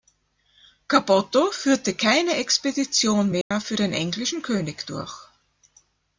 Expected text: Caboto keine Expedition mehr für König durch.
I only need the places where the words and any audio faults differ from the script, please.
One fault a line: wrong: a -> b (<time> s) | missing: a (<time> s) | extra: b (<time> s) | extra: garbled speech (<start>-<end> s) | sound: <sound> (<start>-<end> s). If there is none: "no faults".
extra: führte (1.5 s)
sound: dropout (3.4-3.5 s)
extra: den englischen (3.7 s)